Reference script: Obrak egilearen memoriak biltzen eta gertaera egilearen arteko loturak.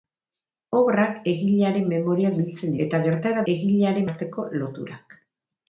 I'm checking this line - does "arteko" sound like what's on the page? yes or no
yes